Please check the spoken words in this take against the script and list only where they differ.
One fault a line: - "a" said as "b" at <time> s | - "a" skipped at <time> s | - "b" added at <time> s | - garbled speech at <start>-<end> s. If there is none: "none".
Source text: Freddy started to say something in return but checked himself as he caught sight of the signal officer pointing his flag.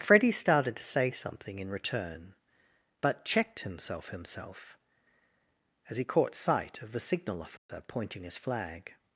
- "himself" added at 4.1 s